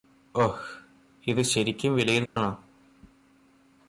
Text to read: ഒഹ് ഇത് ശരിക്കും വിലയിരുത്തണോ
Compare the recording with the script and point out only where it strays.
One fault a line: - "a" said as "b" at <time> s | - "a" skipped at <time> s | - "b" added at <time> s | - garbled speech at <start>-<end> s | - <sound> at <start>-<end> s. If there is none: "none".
- dropout at 2.3-2.4 s